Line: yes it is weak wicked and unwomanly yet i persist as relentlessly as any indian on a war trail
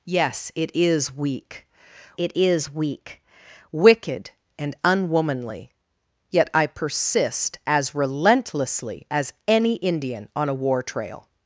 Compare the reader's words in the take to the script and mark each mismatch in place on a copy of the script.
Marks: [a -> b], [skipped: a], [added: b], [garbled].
yes it is weak [added: it is weak] wicked and unwomanly yet i persist as relentlessly as any indian on a war trail